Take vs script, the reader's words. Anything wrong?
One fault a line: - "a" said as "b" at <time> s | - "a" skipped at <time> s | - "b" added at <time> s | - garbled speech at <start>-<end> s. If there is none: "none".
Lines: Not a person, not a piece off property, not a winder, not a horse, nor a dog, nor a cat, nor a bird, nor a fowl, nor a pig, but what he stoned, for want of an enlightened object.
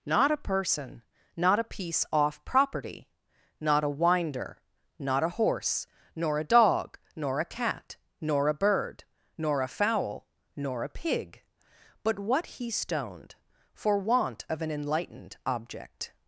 none